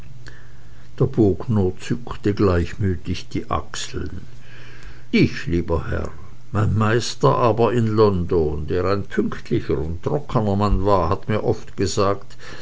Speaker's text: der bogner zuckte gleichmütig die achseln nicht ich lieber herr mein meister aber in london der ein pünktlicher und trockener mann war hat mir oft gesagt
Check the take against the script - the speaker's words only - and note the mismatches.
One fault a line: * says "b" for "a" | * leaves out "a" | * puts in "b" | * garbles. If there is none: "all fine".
* leaves out "nicht"